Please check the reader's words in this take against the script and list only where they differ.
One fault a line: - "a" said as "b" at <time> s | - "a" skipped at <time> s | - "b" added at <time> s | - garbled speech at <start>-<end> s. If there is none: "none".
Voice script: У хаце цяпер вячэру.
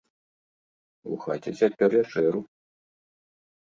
none